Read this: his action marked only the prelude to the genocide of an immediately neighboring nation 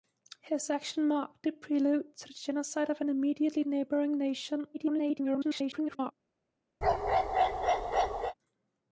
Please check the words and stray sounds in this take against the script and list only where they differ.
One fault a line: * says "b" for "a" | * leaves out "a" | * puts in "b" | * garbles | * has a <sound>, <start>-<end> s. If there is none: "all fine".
* leaves out "only"
* garbles
* has a bark, 6.8-8.3 s